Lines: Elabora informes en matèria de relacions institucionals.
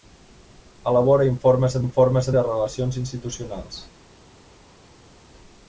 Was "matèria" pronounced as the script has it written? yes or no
no